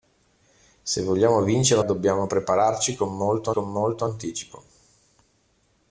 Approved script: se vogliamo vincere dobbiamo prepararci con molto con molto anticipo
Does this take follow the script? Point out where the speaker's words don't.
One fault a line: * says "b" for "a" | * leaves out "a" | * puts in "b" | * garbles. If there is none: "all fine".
all fine